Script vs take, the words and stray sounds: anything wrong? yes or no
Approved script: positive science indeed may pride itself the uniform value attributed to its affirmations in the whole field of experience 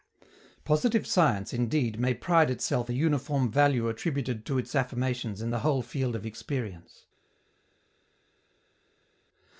no